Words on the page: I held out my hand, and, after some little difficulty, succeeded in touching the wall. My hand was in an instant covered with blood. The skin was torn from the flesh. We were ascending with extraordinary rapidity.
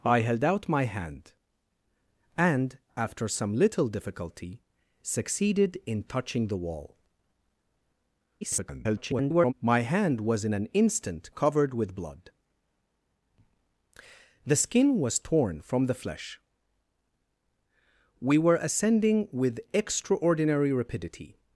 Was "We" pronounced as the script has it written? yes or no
yes